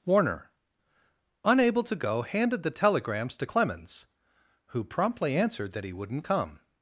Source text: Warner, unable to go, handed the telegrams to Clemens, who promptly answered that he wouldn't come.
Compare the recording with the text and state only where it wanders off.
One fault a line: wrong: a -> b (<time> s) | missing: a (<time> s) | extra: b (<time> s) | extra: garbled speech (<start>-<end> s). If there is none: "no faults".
no faults